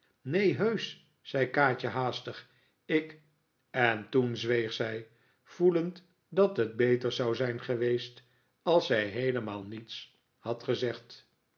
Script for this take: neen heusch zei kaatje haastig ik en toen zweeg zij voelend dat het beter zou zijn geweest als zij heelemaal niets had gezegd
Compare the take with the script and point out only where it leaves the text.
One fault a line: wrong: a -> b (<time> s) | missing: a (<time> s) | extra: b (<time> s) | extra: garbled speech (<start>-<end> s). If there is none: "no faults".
no faults